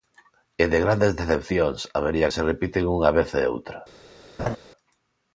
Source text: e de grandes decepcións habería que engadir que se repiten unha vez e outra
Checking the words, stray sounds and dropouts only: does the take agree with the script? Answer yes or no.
no